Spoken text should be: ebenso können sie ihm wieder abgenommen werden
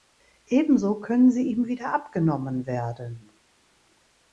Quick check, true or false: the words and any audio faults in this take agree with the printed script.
true